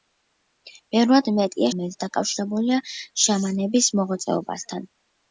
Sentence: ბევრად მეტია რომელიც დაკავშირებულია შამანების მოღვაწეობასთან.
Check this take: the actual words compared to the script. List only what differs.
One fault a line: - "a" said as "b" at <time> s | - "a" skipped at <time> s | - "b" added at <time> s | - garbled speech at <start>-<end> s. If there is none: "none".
none